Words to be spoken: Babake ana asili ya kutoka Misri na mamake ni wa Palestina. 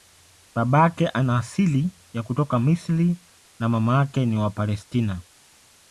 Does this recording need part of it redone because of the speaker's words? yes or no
no